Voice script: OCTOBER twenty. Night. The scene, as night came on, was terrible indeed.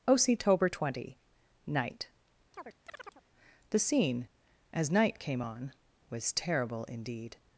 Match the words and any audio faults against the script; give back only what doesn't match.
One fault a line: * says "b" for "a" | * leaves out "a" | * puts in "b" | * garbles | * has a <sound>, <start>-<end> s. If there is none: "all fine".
* has a chirp, 2.5-3.2 s